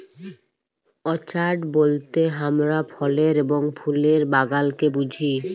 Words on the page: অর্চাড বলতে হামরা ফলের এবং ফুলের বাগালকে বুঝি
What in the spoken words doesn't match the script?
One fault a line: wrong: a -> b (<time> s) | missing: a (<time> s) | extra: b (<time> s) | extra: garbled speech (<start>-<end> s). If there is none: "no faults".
no faults